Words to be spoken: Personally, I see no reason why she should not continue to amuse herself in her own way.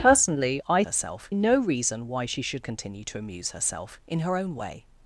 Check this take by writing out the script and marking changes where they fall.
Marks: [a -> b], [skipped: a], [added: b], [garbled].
Personally, I [see -> herself] no reason why she should [skipped: not] continue to amuse herself in her own way.